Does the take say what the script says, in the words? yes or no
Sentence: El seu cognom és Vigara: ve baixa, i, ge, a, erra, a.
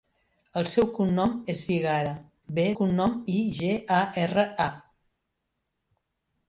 no